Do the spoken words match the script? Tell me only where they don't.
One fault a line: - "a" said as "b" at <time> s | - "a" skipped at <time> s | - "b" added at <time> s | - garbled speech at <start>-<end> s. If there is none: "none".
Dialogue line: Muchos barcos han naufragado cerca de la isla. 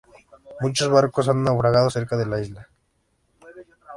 none